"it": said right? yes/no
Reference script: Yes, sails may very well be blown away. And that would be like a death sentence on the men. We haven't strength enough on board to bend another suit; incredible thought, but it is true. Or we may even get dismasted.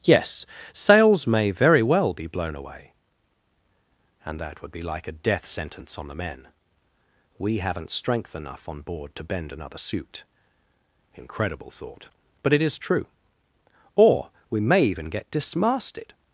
yes